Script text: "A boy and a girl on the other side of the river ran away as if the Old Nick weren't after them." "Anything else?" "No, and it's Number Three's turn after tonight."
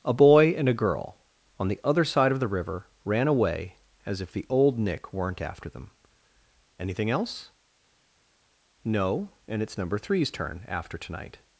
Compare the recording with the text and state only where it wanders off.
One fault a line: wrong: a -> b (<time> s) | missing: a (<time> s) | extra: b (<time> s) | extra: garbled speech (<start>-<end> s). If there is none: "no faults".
no faults